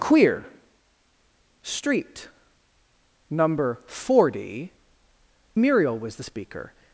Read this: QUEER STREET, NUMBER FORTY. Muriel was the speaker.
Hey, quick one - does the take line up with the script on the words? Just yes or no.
yes